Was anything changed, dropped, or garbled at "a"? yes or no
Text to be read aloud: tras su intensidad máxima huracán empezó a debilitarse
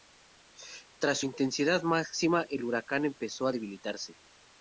no